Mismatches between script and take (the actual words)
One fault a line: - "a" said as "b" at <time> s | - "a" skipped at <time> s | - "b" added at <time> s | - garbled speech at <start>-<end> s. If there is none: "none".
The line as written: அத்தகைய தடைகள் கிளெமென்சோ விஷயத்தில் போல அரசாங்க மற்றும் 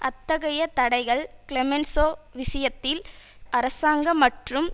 - "போல" skipped at 3.0 s